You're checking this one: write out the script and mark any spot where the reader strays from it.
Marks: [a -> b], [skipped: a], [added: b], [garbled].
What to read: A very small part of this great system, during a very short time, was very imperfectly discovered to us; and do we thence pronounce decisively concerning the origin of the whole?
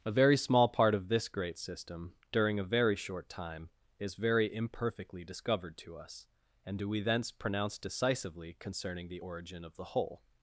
A very small part of this great system, during a very short time, [was -> is] very imperfectly discovered to us; and do we thence pronounce decisively concerning the origin of the whole?